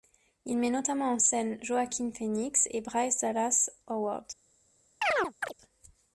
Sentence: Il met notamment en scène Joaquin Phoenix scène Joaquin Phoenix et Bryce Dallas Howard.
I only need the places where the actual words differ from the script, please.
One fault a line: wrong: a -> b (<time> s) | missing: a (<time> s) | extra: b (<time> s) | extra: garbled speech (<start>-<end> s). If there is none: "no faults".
missing: scène Joaquin Phoenix (2.7 s)